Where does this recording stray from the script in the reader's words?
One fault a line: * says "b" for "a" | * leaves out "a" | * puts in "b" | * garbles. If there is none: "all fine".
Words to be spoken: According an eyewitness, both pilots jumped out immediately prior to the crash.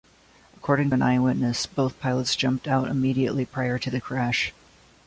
all fine